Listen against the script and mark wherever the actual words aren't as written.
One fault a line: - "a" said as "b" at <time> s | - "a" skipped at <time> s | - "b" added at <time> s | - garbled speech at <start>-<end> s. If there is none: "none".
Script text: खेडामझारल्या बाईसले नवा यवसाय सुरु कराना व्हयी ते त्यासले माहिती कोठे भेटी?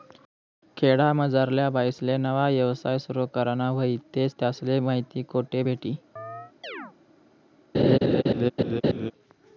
none